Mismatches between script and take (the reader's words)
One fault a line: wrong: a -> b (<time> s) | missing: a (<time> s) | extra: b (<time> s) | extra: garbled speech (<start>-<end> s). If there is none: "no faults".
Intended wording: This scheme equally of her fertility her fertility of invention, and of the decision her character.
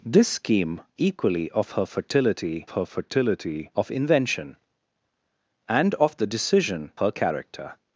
no faults